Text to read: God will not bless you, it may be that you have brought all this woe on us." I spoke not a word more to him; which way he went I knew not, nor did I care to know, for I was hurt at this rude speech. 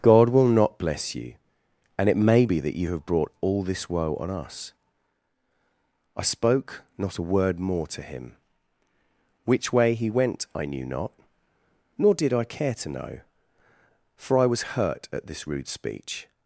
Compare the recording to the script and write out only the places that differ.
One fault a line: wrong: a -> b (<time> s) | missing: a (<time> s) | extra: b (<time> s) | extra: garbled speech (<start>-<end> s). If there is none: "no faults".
extra: and (2.0 s)